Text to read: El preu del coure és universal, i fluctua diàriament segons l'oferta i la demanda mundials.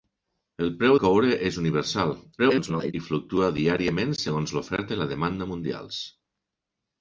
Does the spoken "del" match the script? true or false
false